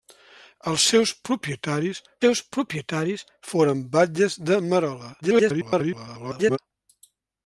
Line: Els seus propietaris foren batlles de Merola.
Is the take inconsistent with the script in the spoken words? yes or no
yes